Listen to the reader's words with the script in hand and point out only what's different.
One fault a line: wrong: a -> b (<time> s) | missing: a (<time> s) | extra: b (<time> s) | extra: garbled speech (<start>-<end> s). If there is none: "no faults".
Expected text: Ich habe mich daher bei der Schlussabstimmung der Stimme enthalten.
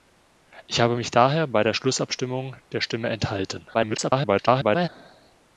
extra: garbled speech (3.7-4.9 s)